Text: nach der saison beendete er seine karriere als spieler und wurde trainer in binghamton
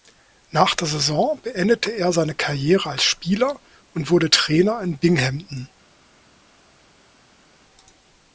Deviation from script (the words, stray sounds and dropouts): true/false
false